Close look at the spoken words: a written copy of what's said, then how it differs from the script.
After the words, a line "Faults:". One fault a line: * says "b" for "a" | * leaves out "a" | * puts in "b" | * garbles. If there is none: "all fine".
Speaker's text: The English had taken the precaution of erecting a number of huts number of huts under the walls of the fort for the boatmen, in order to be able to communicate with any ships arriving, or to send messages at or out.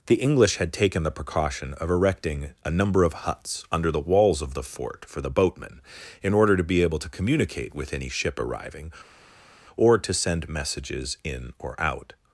The English had taken the precaution of erecting a number of huts under the walls of the fort for the boatmen, in order to be able to communicate with any ship arriving, or to send messages in or out.
Faults:
* leaves out "number of huts"
* says "ship" for "ships"
* says "in" for "at"